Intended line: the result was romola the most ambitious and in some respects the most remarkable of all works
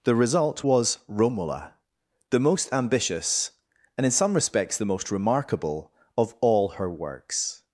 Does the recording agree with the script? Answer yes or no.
no